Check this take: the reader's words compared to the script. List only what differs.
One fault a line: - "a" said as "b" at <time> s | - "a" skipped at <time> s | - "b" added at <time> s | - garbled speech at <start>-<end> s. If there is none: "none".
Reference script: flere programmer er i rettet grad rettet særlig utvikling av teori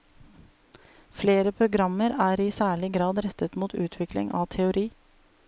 - "rettet" said as "særlig" at 2.6 s
- "særlig" said as "mot" at 3.6 s